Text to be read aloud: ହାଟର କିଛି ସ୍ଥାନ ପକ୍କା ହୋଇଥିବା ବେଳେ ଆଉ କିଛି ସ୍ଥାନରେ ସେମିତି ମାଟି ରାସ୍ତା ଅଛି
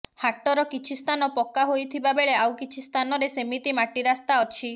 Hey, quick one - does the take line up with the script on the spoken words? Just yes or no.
yes